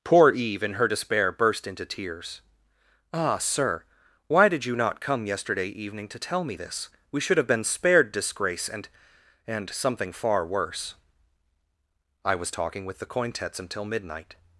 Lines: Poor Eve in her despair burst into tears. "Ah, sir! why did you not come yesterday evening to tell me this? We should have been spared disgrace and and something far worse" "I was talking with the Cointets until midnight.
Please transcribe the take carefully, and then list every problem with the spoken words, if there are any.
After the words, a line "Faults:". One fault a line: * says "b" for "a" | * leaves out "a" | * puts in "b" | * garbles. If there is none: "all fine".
Poor Eve in her despair burst into tears. "Ah, sir! why did you not come yesterday evening to tell me this? We should have been spared disgrace and and something far worse" "I was talking with the Cointets until midnight.
Faults:
all fine